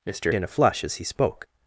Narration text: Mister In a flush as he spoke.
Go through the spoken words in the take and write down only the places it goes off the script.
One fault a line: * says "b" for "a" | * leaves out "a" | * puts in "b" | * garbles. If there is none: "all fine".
all fine